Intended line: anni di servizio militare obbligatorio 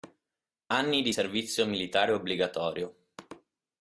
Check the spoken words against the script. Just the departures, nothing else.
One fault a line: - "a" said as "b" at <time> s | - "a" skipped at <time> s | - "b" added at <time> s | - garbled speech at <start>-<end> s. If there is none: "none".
none